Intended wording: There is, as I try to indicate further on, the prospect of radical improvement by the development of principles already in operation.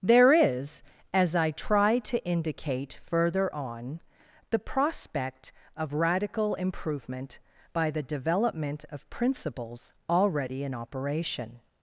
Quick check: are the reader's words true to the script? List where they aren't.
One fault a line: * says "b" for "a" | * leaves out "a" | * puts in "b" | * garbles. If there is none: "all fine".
all fine